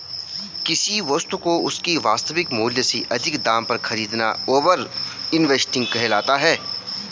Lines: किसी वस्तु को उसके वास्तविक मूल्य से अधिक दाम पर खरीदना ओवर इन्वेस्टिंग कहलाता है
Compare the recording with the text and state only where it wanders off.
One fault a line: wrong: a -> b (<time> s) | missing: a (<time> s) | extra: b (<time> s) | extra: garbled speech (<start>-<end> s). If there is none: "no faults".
no faults